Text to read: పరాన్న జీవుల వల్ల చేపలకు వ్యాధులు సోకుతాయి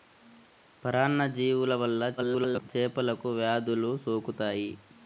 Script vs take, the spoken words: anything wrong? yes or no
yes